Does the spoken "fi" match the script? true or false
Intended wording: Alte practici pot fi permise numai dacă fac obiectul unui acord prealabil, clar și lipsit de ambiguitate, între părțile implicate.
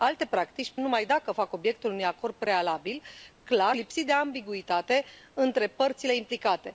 false